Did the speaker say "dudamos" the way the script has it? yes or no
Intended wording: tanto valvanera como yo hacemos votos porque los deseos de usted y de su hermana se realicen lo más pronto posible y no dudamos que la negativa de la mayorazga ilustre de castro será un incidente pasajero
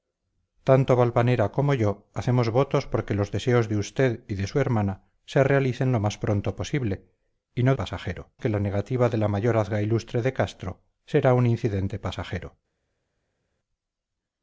no